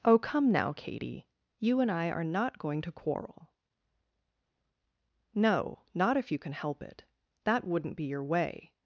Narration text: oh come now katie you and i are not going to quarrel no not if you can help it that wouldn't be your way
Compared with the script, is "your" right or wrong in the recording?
right